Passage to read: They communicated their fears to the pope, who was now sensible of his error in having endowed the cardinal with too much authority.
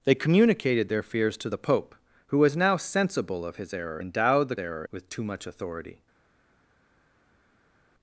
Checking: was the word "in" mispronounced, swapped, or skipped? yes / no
yes